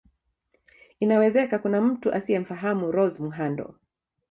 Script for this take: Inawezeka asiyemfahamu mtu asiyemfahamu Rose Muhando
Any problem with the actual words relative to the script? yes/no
yes